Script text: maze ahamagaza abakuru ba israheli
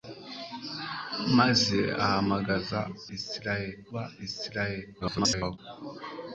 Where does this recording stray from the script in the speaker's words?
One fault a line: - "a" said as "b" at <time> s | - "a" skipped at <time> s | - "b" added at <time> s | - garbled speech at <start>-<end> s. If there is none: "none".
- "abakuru" said as "israheli" at 3.2 s
- garbled speech at 5.0-5.6 s